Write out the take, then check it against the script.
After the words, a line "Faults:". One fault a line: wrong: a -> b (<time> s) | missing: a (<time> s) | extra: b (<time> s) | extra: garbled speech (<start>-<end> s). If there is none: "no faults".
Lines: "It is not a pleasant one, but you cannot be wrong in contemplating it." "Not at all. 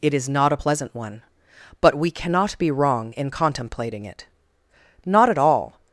"It is not a pleasant one, but we cannot be wrong in contemplating it." "Not at all.
Faults:
wrong: you -> we (1.9 s)